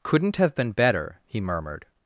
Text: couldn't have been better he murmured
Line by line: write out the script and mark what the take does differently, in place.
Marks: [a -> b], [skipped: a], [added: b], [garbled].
couldn't have been better he murmured